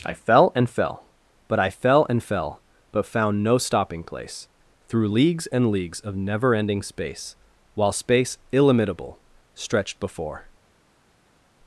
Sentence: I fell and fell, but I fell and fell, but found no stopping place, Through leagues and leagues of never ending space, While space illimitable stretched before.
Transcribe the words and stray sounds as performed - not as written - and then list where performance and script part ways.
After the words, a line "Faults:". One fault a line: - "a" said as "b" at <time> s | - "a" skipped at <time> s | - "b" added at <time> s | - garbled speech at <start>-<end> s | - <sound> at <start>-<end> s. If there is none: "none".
I fell and fell, but I fell and fell, but found no stopping place, Through leagues and leagues of never ending space, While space illimitable stretched before.
Faults:
none